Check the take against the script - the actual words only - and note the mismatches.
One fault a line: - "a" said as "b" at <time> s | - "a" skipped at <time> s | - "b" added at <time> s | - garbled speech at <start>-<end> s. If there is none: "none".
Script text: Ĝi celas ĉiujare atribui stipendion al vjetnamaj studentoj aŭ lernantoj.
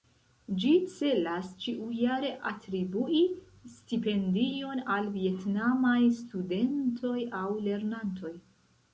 none